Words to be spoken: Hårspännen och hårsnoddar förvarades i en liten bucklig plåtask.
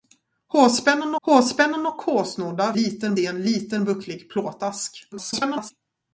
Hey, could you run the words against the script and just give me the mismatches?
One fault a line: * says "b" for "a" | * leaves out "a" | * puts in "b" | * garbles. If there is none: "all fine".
* puts in "hårspännen"
* says "liten" for "förvarades"
* garbles